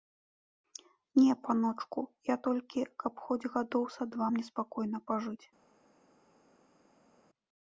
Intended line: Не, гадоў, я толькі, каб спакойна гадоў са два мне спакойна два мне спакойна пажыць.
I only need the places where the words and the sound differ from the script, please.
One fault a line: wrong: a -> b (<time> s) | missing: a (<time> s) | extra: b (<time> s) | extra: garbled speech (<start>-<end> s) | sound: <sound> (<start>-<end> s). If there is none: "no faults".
wrong: гадоў -> паночку (1.5 s)
wrong: спакойна -> хоць (3.2 s)
missing: два мне спакойна (5.0 s)